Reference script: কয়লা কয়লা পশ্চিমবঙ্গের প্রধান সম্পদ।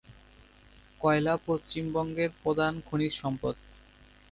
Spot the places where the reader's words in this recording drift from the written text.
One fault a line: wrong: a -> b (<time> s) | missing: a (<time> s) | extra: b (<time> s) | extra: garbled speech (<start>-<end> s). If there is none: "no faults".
missing: কয়লা (1.3 s)
extra: খনিজ (2.9 s)